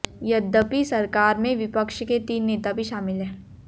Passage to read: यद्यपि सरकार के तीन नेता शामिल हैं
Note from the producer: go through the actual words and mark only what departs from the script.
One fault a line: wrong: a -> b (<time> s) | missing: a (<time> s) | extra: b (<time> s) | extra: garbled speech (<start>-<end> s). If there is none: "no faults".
extra: में विपक्ष (1.4 s)
extra: भी (2.7 s)